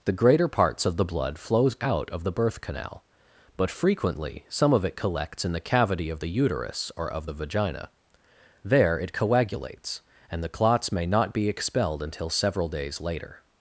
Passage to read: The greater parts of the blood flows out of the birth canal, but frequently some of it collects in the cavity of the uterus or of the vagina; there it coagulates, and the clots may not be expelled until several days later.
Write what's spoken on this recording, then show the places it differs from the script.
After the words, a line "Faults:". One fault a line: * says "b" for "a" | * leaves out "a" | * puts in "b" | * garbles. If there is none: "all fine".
The greater parts of the blood flows out of the birth canal, but frequently some of it collects in the cavity of the uterus or of the vagina; there it coagulates, and the clots may not be expelled until several days later.
Faults:
all fine